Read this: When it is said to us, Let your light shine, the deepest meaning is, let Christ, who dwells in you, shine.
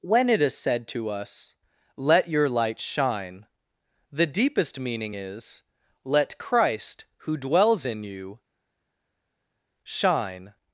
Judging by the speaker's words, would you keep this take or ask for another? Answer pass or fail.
pass